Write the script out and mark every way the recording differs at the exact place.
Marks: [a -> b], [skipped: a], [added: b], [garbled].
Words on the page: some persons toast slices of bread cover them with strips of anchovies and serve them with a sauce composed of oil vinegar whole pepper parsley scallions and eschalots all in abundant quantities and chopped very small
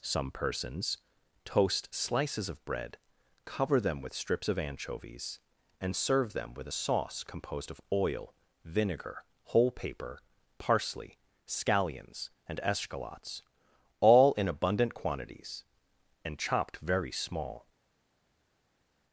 some persons toast slices of bread cover them with strips of anchovies and serve them with a sauce composed of oil vinegar whole [pepper -> paper] parsley scallions and eschalots all in abundant quantities and chopped very small